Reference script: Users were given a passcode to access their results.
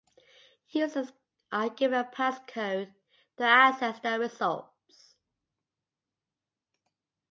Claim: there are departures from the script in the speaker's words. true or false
true